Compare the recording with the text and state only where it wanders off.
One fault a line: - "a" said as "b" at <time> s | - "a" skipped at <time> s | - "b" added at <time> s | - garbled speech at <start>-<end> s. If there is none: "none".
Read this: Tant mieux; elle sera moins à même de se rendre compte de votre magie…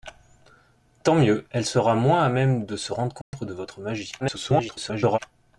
- garbled speech at 4.2-5.2 s